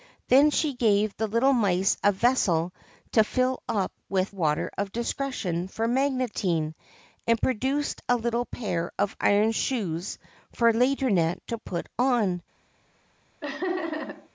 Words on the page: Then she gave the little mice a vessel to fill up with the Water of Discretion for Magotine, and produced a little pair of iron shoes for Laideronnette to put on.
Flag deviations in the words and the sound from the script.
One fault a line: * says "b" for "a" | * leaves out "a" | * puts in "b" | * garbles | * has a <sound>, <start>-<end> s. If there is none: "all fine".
* leaves out "the"
* has a laugh, 13.4-14.3 s